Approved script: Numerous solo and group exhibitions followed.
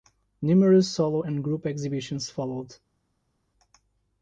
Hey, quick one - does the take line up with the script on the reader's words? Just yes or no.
yes